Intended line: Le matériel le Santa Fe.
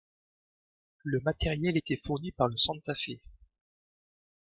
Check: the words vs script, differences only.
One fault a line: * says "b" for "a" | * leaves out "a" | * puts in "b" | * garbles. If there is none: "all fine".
* puts in "était fourni par"